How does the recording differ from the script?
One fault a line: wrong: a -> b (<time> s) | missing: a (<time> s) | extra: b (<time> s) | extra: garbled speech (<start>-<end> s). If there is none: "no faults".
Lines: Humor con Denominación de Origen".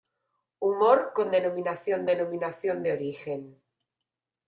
extra: Denominación (2.0 s)